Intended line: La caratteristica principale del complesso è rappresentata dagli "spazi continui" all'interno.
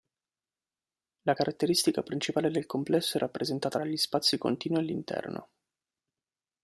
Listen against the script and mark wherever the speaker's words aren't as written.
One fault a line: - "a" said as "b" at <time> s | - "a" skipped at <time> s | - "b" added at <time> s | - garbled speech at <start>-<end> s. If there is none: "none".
none